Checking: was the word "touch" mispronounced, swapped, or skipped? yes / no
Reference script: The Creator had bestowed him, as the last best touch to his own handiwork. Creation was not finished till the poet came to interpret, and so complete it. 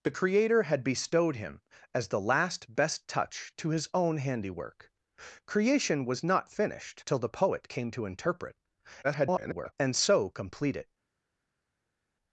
no